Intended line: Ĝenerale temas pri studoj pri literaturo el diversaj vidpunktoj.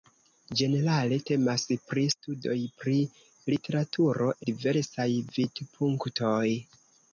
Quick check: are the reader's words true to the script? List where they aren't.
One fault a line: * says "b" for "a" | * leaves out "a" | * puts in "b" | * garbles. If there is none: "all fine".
* leaves out "el"